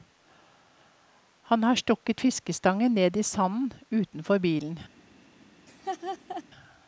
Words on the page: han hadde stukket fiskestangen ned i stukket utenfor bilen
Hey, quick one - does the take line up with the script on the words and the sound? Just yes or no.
no